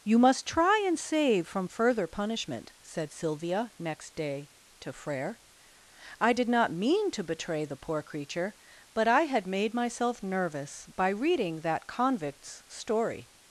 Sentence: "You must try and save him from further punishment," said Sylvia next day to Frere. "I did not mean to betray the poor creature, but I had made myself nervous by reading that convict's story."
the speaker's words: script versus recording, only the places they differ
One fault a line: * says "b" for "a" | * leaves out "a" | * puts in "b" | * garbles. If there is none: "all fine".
* leaves out "him"